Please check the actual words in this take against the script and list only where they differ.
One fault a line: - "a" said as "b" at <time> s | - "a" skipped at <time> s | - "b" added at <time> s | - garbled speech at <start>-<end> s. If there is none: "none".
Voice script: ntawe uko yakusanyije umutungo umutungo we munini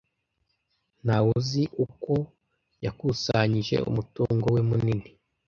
- "uzi" added at 1.4 s
- "umutungo" skipped at 4.5 s